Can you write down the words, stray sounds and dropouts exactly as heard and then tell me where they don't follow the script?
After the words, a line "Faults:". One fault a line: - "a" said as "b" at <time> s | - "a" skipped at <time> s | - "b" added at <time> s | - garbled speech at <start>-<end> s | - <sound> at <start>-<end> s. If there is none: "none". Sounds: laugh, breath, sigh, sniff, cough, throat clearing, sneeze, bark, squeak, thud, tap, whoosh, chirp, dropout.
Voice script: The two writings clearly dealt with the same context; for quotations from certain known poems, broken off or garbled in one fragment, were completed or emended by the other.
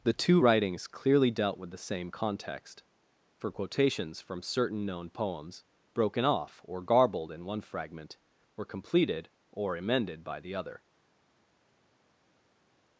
The two writings clearly dealt with the same context; for quotations from certain known poems, broken off or garbled in one fragment, were completed or emended by the other.
Faults:
none